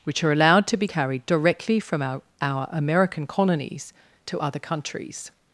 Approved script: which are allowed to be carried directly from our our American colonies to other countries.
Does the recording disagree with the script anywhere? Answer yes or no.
no